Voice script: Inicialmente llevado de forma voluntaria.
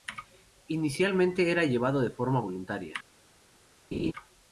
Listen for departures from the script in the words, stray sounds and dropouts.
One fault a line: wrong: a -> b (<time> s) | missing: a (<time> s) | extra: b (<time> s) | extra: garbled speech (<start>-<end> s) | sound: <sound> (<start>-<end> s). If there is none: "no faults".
extra: era (1.5 s)
sound: laugh (3.9-4.1 s)